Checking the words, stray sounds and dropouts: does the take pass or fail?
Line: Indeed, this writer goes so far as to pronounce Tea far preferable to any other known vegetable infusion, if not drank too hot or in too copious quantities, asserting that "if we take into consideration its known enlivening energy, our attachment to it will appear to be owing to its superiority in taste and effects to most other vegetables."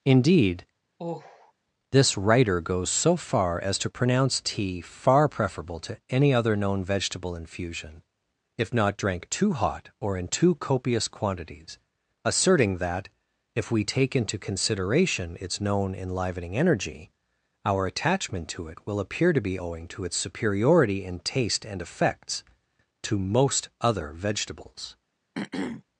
fail